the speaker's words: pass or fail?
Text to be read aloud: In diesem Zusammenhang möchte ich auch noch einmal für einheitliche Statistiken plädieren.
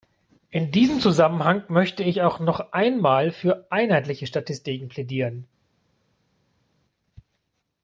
pass